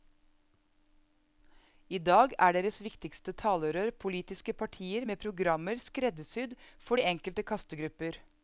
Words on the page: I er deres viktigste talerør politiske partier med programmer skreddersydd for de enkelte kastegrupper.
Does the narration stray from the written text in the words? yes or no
yes